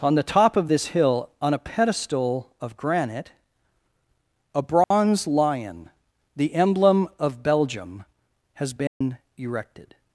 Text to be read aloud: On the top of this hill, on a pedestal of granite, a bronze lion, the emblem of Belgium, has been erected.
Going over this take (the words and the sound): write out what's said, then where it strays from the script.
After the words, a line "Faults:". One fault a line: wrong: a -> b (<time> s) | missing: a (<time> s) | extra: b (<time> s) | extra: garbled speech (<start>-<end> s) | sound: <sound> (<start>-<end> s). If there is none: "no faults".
On the top of this hill, on a pedestal of granite, a bronze lion, the emblem of Belgium, has been erected.
Faults:
sound: dropout (4.8-4.9 s)
sound: dropout (8.9-9.0 s)